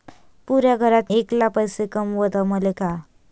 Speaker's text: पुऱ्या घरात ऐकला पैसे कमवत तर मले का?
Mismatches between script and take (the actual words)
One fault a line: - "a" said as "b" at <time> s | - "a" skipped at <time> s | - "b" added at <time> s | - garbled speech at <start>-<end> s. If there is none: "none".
none